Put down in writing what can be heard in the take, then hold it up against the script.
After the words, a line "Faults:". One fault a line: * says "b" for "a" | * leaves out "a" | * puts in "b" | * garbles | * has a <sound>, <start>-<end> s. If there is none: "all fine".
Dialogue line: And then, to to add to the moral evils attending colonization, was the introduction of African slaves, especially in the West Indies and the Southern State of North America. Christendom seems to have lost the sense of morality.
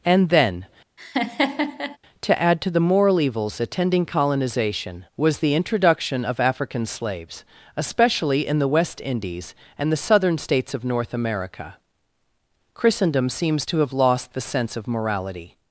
And then, to add to the moral evils attending colonization, was the introduction of African slaves, especially in the West Indies and the Southern States of North America. Christendom seems to have lost the sense of morality.
Faults:
* has a laugh, 1.0-2.0 s
* leaves out "to"
* says "States" for "State"